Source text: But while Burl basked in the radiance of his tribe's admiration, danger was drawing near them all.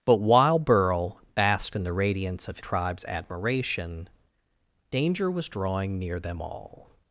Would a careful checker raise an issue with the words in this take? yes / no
yes